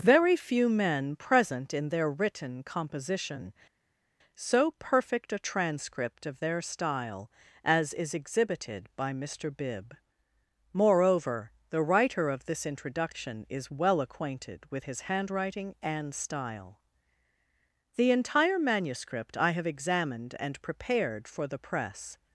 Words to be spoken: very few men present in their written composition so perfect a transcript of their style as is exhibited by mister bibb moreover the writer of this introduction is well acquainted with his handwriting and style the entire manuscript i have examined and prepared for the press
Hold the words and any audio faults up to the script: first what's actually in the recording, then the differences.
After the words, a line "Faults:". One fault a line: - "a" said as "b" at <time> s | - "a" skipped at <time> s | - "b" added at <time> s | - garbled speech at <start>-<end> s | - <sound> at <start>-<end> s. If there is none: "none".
very few men present in their written composition so perfect a transcript of their style as is exhibited by mister bibb moreover the writer of this introduction is well acquainted with his handwriting and style the entire manuscript i have examined and prepared for the press
Faults:
none